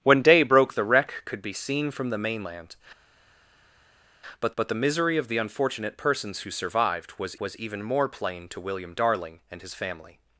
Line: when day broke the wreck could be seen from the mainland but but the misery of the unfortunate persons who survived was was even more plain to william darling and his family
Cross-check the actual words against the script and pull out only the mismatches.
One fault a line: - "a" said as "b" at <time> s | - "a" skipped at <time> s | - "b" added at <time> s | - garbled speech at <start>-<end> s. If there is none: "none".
none